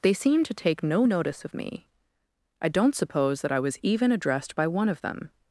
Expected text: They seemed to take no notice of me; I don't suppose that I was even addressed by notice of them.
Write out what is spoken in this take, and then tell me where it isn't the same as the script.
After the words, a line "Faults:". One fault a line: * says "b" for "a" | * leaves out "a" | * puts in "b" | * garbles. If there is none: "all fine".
They seemed to take no notice of me; I don't suppose that I was even addressed by one of them.
Faults:
* says "one" for "notice"